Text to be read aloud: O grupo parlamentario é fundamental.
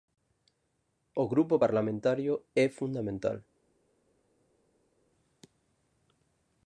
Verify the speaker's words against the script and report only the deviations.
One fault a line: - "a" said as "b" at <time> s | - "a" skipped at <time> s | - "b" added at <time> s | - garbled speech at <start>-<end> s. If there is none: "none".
none